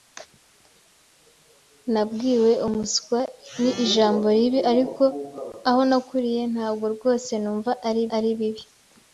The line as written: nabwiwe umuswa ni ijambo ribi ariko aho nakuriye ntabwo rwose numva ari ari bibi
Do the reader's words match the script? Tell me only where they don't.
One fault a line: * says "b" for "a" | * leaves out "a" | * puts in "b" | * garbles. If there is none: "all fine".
all fine